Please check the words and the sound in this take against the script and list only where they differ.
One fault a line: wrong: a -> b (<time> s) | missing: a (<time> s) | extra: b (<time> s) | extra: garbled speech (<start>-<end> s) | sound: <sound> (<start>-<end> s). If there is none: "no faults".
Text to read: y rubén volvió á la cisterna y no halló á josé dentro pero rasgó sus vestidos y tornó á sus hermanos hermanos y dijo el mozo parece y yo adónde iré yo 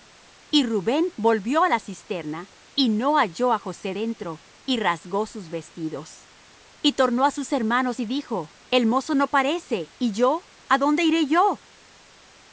wrong: pero -> y (4.7 s)
missing: hermanos (8.0 s)
extra: no (9.1 s)